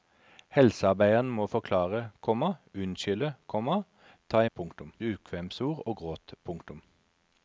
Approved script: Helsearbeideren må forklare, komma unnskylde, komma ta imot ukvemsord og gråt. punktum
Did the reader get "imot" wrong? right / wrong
wrong